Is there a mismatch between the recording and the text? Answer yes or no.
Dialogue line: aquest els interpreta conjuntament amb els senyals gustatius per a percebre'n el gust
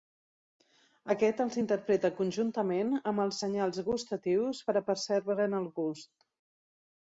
no